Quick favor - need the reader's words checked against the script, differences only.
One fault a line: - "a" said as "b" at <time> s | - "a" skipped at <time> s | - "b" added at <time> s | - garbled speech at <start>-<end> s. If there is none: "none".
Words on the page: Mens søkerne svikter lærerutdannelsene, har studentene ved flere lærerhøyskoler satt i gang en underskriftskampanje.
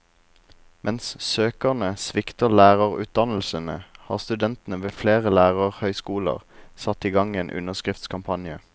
none